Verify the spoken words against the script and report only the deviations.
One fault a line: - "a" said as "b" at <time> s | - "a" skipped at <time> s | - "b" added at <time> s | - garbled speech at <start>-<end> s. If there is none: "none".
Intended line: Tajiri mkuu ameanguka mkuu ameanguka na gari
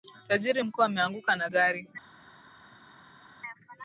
- "mkuu ameanguka" skipped at 1.4 s